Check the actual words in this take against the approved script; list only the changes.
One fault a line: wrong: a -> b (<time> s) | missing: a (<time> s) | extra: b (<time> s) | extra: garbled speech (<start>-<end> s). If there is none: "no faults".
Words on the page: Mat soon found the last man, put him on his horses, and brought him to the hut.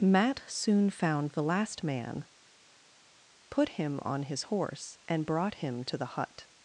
wrong: horses -> horse (4.4 s)